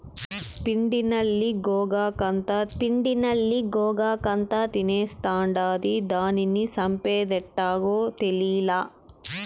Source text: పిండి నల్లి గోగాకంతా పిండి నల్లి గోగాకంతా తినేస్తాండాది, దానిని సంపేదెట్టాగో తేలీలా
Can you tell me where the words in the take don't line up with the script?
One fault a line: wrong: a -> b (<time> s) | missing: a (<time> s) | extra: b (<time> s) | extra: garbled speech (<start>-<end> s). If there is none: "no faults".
no faults